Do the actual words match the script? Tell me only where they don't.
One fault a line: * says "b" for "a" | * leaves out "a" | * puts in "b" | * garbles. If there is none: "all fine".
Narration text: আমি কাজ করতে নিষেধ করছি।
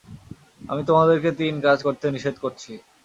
* puts in "তোমাদেরকে তিন"